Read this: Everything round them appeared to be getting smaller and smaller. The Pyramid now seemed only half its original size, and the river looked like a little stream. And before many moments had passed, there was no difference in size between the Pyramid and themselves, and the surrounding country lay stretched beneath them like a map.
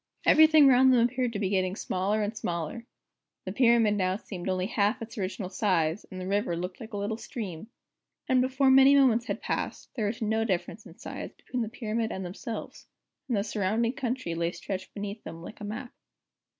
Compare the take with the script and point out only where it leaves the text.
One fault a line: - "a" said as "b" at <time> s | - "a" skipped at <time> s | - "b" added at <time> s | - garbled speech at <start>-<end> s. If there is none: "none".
none